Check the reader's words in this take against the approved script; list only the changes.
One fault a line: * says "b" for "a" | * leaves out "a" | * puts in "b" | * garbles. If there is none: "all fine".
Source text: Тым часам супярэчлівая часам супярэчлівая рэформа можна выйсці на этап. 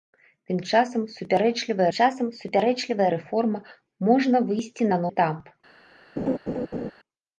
all fine